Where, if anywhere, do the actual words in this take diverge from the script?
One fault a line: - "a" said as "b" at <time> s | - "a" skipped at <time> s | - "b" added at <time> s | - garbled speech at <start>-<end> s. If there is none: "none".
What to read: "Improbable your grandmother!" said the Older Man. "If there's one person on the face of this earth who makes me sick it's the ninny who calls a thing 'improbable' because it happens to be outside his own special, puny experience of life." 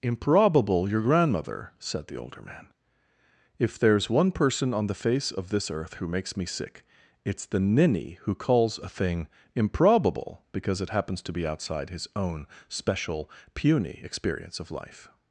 none